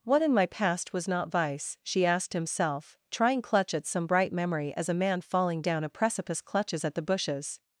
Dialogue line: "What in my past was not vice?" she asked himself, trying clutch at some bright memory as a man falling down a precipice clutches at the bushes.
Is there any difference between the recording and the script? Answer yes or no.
no